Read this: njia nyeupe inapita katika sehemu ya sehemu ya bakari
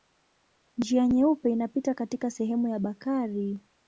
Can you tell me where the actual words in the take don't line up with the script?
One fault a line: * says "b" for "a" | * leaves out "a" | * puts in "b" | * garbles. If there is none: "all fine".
* leaves out "sehemu ya"